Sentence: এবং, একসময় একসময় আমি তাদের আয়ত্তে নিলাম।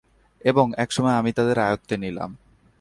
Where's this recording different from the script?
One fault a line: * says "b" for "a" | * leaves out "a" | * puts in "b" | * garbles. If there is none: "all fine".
* leaves out "একসময়"